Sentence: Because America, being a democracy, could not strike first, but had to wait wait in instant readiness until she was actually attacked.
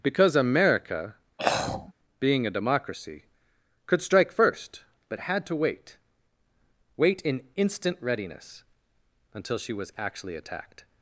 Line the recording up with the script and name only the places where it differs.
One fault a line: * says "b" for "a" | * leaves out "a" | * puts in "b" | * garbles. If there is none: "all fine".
* leaves out "not"